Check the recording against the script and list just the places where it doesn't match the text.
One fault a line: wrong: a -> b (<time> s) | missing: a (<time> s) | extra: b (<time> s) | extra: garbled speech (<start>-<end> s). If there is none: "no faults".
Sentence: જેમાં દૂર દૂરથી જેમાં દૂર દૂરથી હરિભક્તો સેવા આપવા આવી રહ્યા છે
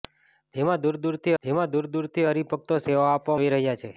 no faults